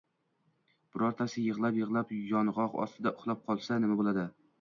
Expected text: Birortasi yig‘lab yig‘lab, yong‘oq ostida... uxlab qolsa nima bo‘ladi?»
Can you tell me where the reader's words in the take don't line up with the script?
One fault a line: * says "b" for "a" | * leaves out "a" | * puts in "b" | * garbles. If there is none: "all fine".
all fine